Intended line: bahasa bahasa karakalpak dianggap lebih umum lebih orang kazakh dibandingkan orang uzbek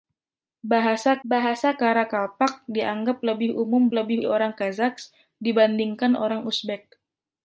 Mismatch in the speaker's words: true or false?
false